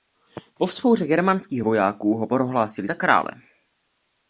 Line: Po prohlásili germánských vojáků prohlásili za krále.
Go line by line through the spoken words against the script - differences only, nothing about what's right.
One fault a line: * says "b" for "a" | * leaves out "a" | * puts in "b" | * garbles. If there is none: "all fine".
* says "vzpouře" for "prohlásili"
* puts in "ho"